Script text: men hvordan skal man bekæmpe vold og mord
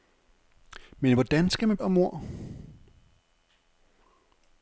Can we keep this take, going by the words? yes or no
no